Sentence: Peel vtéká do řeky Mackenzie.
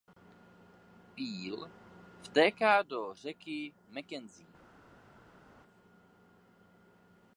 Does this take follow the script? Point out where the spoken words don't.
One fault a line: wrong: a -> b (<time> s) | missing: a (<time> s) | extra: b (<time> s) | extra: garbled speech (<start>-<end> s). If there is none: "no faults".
no faults